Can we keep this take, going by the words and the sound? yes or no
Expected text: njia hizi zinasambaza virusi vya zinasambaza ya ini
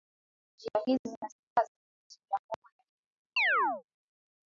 no